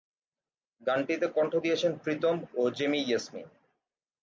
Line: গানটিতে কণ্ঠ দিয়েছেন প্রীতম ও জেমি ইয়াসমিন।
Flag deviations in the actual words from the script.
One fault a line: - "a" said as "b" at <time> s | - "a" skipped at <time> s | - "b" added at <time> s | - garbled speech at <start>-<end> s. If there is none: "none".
none